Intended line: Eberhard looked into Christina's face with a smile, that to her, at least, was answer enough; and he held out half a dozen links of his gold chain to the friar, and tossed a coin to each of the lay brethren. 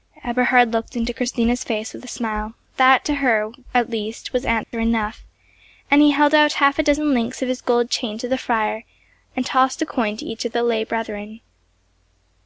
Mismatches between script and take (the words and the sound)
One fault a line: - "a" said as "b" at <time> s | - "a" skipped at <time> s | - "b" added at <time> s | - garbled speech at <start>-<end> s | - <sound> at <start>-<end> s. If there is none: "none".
- dropout at 4.6-4.7 s